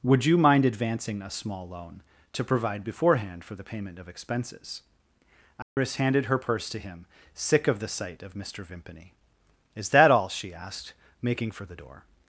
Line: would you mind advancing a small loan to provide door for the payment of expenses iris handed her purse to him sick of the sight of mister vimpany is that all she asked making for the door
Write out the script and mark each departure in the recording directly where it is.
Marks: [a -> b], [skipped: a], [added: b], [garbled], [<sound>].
would you mind advancing a small loan to provide [door -> beforehand] for the payment of expenses iris [dropout] handed her purse to him sick of the sight of mister vimpany is that all she asked making for the door